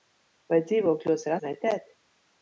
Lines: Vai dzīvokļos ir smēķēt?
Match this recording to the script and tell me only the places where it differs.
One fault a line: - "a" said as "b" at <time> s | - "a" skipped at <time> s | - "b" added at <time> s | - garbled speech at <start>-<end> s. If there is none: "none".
none